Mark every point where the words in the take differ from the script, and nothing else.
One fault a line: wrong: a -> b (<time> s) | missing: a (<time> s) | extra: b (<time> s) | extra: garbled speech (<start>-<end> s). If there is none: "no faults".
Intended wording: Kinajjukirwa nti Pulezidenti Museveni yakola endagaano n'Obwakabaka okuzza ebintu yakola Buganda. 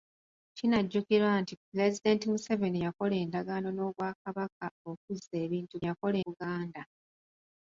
no faults